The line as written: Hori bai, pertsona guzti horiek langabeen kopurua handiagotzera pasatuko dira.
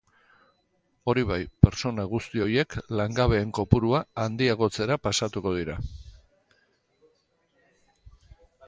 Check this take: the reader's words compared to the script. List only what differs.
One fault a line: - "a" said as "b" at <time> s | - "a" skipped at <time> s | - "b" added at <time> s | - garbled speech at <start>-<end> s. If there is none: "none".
none